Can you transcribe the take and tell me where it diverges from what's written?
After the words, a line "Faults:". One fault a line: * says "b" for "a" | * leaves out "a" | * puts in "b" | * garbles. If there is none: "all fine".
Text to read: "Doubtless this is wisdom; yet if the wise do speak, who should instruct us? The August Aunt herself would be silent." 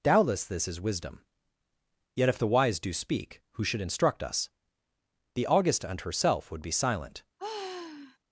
"Doubtless this is wisdom; yet if the wise do speak, who should instruct us? The August Aunt herself would be silent."
Faults:
all fine